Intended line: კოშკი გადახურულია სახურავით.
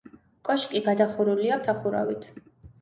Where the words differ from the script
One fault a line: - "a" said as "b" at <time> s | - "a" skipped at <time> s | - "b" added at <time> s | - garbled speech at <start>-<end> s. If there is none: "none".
none